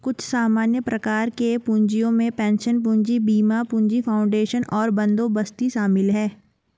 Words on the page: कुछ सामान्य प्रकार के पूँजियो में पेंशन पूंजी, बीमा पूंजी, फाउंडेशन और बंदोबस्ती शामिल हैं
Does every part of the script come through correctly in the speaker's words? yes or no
yes